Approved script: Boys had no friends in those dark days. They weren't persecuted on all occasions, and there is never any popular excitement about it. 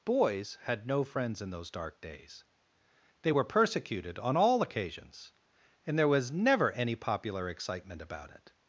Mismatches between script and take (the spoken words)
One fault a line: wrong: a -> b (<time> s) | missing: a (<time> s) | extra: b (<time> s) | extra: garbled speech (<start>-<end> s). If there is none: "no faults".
wrong: weren't -> were (3.3 s)
wrong: is -> was (6.1 s)